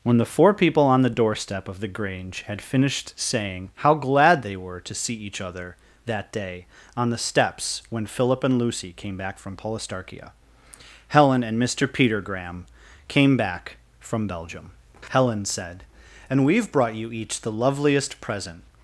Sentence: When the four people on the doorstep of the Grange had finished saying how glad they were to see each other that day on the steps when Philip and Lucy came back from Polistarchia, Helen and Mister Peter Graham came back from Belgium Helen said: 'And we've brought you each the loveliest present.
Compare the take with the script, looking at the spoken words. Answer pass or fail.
pass